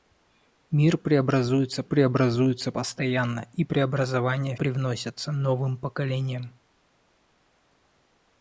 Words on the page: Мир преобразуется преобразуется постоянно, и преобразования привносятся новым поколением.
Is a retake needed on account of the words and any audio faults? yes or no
no